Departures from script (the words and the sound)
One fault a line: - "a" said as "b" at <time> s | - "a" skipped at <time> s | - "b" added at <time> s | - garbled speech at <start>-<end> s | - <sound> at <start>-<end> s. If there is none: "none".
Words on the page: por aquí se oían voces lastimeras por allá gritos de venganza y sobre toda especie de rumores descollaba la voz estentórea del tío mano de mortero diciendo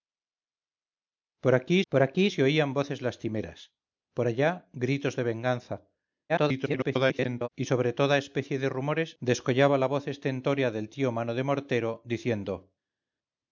- "por aquí" added at 1.9 s
- garbled speech at 6.3-7.5 s